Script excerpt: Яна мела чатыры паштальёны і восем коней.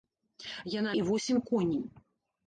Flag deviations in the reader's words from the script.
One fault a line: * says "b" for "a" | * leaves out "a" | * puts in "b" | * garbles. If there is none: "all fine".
* leaves out "мела чатыры паштальёны"